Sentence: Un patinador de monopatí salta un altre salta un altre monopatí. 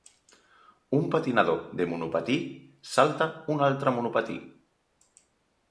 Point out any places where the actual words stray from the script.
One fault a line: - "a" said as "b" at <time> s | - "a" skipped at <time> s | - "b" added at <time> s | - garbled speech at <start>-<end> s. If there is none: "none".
- "salta un altre" skipped at 3.9 s